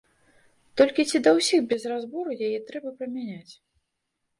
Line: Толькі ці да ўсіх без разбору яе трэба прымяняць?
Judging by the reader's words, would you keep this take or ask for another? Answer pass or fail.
pass